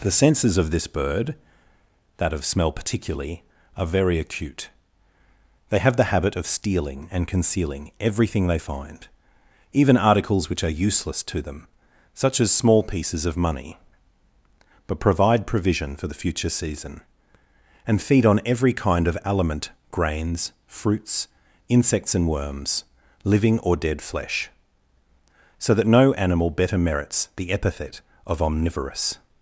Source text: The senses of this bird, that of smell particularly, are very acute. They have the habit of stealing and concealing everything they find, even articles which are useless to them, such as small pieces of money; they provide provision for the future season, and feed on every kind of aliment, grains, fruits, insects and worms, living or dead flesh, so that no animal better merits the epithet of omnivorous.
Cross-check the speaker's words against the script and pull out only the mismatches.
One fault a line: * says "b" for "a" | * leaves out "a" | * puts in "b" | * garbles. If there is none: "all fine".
* says "but" for "they"